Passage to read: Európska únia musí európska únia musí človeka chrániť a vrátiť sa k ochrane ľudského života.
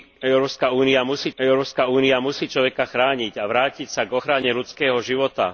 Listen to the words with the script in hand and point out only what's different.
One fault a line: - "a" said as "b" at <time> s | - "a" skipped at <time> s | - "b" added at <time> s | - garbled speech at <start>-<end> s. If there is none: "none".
none